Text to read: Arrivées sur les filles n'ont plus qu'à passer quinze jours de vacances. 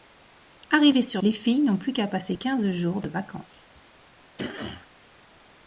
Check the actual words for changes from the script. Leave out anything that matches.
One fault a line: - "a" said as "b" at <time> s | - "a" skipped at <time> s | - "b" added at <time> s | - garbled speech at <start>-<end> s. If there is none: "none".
none